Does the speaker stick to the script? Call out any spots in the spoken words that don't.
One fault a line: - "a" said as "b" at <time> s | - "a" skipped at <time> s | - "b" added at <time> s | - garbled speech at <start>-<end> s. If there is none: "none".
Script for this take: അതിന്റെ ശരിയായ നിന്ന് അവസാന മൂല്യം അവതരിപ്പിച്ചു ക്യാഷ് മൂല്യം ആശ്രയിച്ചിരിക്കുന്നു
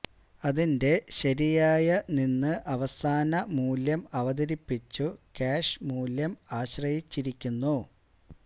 none